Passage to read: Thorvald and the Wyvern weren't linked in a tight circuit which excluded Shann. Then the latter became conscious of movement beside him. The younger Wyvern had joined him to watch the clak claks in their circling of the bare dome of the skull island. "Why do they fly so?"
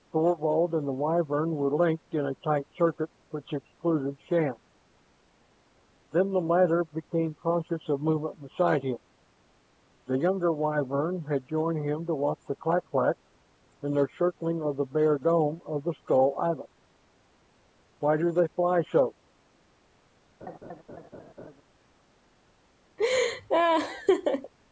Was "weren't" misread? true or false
true